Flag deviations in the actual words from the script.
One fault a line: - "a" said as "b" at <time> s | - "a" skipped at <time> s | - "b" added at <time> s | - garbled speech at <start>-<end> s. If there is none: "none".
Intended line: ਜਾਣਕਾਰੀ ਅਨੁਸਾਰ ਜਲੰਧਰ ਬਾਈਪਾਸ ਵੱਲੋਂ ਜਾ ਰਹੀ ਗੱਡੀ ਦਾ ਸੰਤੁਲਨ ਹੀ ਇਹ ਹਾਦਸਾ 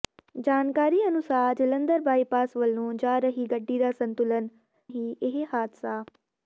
none